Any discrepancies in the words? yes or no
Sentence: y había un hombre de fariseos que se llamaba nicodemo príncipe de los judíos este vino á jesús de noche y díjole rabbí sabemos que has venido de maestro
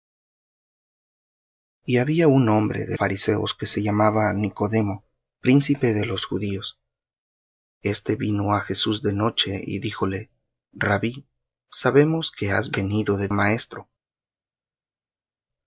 no